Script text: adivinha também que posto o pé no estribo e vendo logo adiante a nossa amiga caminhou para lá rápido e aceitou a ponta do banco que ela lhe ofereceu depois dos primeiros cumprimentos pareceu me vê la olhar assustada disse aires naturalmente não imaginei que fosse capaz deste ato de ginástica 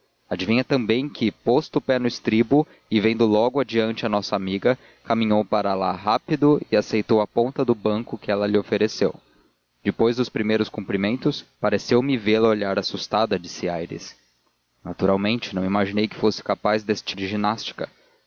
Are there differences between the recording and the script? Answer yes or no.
yes